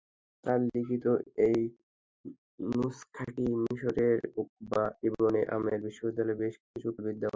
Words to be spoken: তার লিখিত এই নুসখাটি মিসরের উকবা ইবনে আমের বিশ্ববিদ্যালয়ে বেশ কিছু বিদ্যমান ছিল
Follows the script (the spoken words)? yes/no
yes